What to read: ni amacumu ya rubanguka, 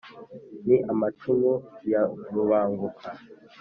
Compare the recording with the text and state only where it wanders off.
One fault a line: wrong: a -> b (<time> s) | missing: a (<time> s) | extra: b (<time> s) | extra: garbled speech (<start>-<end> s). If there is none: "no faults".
no faults